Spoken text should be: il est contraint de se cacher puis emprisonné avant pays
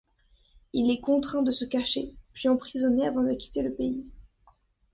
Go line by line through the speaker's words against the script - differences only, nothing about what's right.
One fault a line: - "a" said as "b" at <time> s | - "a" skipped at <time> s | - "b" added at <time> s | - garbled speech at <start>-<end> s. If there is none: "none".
- "de quitter le" added at 3.2 s